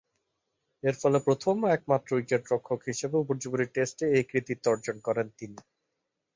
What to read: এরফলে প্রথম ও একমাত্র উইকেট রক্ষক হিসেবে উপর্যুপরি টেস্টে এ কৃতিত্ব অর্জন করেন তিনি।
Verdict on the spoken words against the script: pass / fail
pass